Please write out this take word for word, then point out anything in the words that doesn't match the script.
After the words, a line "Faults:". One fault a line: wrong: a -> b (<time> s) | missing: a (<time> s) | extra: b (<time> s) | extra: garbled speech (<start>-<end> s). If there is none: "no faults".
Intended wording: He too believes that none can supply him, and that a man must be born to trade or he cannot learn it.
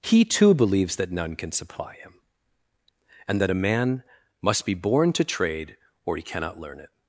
He too believes that none can supply him, and that a man must be born to trade or he cannot learn it.
Faults:
no faults